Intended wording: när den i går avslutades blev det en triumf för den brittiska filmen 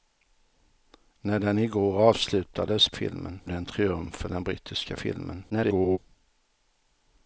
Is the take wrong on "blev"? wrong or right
wrong